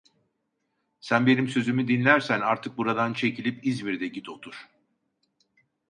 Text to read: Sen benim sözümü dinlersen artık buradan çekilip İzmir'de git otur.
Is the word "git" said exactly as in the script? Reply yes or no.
yes